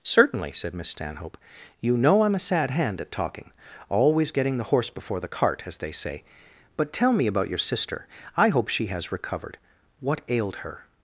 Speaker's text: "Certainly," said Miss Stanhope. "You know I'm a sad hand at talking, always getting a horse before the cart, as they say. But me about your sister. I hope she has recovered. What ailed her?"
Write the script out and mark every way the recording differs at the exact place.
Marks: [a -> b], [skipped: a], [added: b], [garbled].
"Certainly," said Miss Stanhope. "You know I'm a sad hand at talking, always getting [a -> the] horse before the cart, as they say. But [added: tell] me about your sister. I hope she has recovered. What ailed her?"